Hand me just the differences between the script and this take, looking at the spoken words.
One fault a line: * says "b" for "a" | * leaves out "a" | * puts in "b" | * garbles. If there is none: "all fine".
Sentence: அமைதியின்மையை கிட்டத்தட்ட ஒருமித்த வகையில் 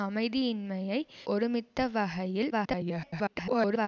* leaves out "கிட்டத்தட்ட"
* garbles